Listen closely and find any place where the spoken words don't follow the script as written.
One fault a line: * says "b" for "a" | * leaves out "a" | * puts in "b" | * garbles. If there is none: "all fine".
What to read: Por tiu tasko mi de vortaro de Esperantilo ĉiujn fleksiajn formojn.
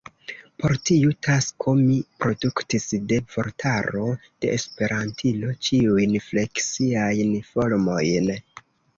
* puts in "produktis"